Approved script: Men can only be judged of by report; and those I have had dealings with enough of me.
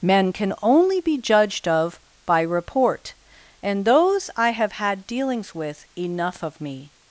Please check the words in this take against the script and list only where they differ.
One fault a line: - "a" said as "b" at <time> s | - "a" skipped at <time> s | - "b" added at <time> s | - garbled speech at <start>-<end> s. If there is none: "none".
none